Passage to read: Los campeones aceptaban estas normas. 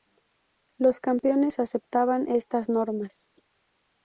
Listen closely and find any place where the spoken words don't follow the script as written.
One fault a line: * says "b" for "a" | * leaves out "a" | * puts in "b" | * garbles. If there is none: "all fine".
all fine